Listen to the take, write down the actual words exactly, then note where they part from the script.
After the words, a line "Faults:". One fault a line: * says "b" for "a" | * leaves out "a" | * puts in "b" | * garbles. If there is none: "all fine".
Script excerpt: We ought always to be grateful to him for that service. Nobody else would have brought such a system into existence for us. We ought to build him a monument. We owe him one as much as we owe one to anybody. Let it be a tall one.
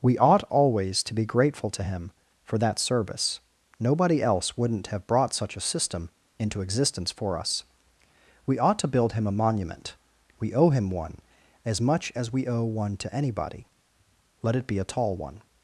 We ought always to be grateful to him for that service. Nobody else wouldn't have brought such a system into existence for us. We ought to build him a monument. We owe him one as much as we owe one to anybody. Let it be a tall one.
Faults:
* says "wouldn't" for "would"